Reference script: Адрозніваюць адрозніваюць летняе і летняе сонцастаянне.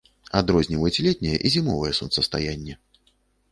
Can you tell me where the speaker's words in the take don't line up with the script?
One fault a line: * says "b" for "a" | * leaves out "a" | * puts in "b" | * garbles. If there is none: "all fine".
* leaves out "адрозніваюць"
* says "зімовае" for "летняе"